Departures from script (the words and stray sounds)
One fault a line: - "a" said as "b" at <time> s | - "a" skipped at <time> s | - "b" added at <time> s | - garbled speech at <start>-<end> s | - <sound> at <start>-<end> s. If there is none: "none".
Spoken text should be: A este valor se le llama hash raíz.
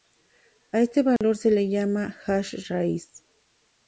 - dropout at 1.2-1.2 s